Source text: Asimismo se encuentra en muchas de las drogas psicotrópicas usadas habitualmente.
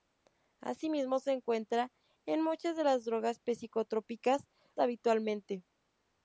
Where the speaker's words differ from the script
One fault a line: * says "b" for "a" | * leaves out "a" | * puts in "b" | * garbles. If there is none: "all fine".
* leaves out "usadas"